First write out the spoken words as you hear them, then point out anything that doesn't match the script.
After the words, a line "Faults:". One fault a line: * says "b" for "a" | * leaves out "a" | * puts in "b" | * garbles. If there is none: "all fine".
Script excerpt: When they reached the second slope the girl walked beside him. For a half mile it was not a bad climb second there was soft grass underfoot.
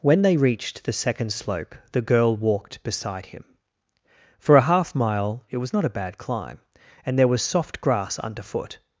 When they reached the second slope the girl walked beside him. For a half mile it was not a bad climb and there was soft grass underfoot.
Faults:
* says "and" for "second"